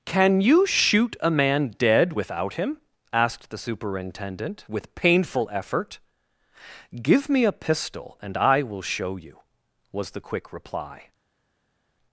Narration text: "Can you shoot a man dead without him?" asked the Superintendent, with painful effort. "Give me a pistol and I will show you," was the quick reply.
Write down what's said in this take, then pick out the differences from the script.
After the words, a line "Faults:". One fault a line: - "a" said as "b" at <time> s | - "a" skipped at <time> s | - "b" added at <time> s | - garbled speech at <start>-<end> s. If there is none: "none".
"Can you shoot a man dead without him?" asked the Superintendent, with painful effort. "Give me a pistol and I will show you," was the quick reply.
Faults:
none